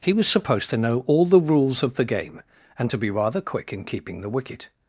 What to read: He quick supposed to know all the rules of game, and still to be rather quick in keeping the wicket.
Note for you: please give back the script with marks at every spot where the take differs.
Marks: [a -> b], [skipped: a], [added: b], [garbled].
He [quick -> was] supposed to know all the rules of [added: the] game, and [skipped: still] to be rather quick in keeping the wicket.